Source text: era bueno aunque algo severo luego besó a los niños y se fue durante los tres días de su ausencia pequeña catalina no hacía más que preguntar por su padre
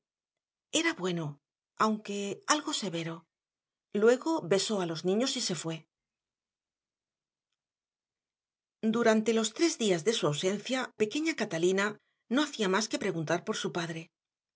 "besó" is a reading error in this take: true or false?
false